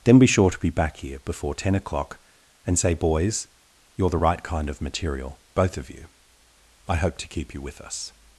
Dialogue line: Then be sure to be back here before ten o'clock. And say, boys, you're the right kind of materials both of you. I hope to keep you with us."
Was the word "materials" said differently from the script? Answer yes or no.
yes